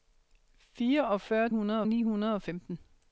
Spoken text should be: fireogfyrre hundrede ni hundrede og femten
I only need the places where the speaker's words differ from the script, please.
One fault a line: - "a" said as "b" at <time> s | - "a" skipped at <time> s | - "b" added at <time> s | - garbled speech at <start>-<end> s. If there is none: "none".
none